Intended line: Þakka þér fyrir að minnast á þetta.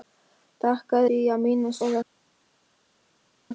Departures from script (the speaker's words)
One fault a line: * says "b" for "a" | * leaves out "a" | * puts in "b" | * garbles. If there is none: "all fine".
* leaves out "þér"